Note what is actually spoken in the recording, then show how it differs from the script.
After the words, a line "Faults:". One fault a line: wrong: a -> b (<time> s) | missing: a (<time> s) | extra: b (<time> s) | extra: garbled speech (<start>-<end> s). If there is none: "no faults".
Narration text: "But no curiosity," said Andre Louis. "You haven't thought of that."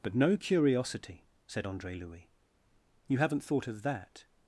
"But no curiosity," said Andre Louis. "You haven't thought of that."
Faults:
no faults